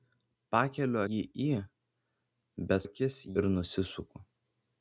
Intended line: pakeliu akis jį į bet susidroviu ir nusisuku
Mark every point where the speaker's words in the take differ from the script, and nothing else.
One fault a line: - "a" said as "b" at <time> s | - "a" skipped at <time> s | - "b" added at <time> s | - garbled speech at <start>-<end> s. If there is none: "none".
- "akis" skipped at 1.0 s
- "susidroviu" said as "akis" at 2.8 s